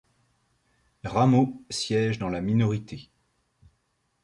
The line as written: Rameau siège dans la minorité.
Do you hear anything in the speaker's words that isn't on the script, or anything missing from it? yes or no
no